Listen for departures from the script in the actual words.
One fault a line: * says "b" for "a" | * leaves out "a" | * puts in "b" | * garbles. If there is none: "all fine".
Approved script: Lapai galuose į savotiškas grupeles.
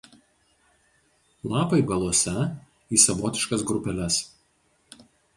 all fine